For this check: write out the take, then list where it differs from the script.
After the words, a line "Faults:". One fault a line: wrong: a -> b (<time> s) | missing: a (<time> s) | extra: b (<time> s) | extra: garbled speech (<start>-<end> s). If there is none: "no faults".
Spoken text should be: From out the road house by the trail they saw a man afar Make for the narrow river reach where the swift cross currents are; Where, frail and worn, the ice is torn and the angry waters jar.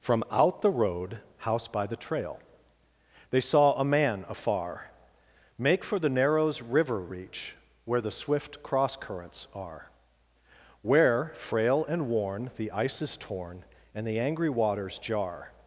From out the road house by the trail they saw a man afar Make for the narrows river reach where the swift cross currents are; Where, frail and worn, the ice is torn and the angry waters jar.
Faults:
wrong: narrow -> narrows (6.1 s)